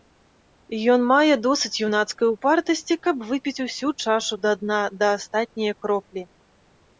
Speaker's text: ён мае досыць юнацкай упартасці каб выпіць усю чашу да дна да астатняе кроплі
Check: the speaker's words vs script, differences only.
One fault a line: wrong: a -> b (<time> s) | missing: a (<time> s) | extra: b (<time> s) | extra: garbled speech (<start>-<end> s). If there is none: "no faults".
no faults